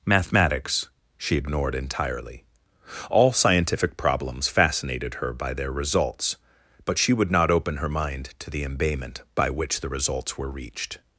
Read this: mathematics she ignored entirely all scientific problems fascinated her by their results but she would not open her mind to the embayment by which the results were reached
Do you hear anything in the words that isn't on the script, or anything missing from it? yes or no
no